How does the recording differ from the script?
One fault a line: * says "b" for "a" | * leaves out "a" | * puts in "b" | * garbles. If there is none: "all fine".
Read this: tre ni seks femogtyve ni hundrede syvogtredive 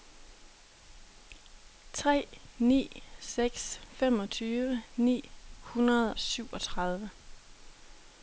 all fine